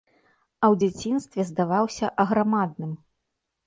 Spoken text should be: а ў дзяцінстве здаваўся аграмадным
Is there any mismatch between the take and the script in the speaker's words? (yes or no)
no